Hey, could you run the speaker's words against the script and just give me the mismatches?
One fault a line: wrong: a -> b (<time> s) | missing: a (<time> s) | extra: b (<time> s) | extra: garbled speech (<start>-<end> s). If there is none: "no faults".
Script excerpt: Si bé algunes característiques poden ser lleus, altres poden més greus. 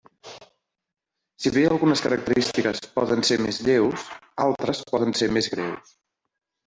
extra: més (3.4 s)
extra: ser (5.2 s)